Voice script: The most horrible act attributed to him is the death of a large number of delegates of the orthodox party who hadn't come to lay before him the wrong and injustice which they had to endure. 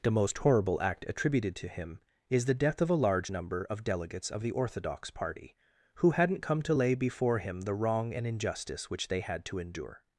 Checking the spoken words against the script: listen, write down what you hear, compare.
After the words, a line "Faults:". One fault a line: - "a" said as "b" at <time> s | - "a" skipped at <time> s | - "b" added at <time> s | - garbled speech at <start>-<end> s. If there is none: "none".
The most horrible act attributed to him is the death of a large number of delegates of the orthodox party who hadn't come to lay before him the wrong and injustice which they had to endure.
Faults:
none